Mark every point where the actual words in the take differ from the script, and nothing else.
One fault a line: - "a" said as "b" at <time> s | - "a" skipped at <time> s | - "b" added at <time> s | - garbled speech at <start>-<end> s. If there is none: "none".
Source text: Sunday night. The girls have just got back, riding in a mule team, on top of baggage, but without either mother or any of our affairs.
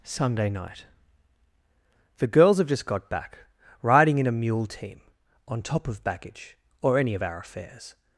- "but without either mother" skipped at 6.6 s